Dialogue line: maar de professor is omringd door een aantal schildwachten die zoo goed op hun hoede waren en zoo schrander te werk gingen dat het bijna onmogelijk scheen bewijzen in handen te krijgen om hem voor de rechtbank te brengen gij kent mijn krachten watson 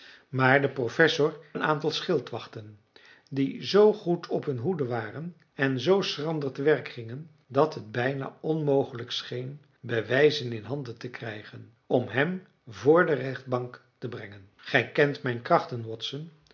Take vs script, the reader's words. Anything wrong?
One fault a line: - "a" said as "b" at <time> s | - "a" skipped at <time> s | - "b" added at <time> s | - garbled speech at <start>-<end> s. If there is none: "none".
- "is omringd door" skipped at 1.4 s